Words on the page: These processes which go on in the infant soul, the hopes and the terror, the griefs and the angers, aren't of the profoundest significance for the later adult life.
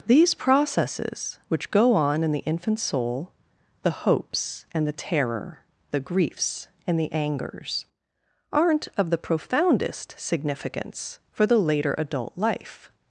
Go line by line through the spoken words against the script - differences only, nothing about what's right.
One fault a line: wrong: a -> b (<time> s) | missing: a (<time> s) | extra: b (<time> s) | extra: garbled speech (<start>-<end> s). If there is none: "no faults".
no faults